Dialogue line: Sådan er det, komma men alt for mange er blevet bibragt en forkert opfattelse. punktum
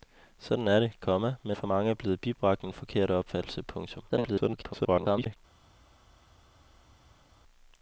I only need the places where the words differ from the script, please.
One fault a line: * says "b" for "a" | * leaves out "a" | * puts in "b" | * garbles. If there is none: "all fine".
* leaves out "alt"
* garbles